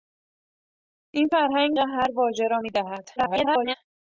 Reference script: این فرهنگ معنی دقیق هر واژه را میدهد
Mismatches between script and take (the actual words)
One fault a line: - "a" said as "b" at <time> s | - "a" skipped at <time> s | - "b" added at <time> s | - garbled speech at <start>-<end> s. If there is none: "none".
- "معنی دقیق" skipped at 1.7 s
- garbled speech at 3.2-3.8 s